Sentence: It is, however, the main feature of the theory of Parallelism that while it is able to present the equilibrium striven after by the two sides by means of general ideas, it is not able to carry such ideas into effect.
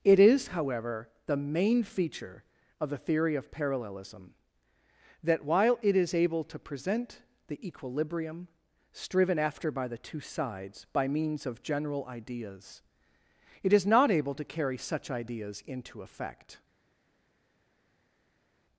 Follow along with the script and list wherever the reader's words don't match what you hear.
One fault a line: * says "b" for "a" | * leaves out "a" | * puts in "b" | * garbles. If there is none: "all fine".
all fine